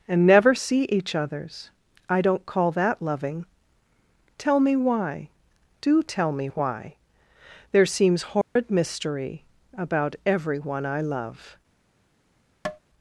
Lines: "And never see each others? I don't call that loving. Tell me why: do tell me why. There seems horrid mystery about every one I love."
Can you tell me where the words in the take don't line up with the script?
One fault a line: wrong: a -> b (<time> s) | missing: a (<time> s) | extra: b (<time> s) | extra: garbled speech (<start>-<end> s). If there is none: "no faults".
no faults